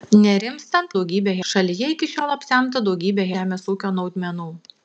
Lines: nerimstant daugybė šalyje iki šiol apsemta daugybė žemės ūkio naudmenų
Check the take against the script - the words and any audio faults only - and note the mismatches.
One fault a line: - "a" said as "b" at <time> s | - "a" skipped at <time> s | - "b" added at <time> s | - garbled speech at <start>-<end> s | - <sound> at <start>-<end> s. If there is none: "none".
none